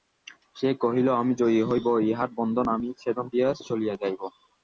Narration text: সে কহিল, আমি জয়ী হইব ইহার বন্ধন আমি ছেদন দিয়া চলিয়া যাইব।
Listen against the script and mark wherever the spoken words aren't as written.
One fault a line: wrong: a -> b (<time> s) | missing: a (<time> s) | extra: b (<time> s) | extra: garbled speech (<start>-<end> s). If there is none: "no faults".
no faults